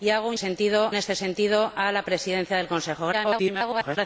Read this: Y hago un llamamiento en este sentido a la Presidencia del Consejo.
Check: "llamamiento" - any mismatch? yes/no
yes